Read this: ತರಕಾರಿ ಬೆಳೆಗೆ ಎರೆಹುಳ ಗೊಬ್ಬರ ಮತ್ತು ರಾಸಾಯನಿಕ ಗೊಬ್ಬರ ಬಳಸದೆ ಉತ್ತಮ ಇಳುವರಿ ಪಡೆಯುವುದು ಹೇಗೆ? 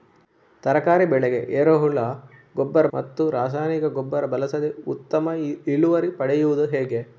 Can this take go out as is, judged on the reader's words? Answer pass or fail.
pass